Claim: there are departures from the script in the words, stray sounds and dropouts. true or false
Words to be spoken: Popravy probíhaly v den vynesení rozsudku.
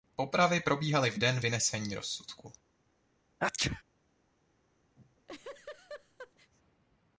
true